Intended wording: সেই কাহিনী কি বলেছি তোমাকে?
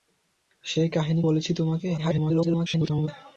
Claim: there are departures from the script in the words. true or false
true